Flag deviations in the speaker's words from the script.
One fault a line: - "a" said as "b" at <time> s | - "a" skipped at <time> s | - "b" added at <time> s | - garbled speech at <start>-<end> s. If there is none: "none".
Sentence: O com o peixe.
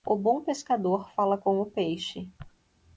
- "bom pescador fala" added at 0.1 s